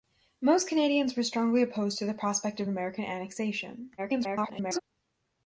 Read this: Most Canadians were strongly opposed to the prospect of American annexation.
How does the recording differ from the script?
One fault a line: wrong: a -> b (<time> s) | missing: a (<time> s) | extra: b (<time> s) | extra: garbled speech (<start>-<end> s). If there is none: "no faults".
extra: garbled speech (4.0-4.8 s)